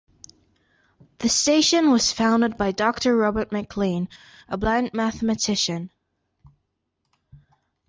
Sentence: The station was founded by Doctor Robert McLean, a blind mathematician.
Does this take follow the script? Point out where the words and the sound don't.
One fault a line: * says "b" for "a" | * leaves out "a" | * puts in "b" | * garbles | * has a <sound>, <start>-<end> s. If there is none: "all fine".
all fine